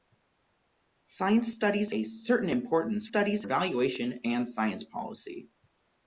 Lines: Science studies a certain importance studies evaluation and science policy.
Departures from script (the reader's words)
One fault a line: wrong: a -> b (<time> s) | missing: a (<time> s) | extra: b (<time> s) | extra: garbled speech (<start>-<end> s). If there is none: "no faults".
no faults